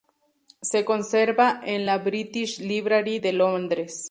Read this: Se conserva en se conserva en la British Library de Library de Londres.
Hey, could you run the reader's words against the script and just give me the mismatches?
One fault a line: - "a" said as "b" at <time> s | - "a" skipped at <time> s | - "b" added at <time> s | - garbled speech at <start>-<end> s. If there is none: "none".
- "se conserva en" skipped at 1.9 s
- "Library de" skipped at 3.3 s